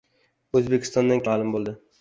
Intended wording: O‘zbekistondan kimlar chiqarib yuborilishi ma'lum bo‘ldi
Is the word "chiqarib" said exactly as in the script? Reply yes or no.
no